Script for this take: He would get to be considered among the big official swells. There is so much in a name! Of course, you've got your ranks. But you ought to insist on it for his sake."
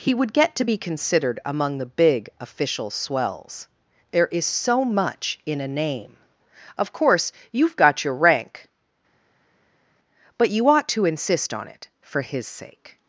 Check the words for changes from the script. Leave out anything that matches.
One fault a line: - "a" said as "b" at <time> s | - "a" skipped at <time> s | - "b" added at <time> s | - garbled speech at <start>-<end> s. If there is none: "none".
- "ranks" said as "rank" at 8.2 s